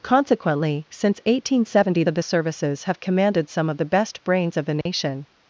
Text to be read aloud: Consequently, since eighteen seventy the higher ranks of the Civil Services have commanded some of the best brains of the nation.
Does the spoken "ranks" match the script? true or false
false